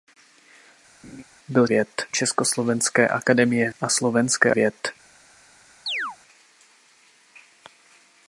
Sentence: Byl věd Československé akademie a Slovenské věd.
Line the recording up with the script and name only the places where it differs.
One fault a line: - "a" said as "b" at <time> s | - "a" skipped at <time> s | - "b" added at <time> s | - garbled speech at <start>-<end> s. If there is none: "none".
none